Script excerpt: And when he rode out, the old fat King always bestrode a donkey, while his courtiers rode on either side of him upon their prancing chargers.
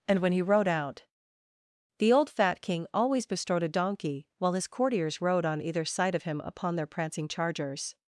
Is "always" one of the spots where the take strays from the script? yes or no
no